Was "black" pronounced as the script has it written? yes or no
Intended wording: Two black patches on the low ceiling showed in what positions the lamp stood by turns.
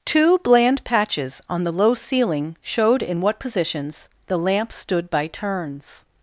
no